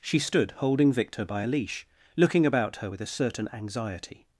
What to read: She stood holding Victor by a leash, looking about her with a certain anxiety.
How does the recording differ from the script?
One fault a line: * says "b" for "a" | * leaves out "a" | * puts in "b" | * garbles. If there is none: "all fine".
all fine